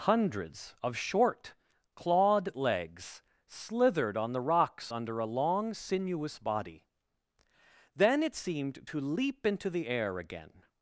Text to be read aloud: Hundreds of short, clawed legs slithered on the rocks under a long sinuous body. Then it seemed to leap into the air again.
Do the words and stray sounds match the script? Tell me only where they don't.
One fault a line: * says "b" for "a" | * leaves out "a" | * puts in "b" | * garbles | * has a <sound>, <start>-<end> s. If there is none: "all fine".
all fine